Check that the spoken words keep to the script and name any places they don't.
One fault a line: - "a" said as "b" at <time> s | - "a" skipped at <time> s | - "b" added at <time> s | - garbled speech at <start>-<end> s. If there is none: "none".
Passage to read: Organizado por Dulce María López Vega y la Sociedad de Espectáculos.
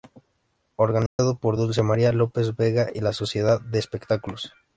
none